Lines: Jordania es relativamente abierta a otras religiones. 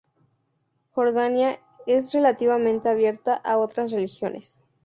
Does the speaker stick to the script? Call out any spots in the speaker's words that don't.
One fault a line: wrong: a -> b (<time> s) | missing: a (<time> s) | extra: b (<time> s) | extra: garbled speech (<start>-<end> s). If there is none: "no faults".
no faults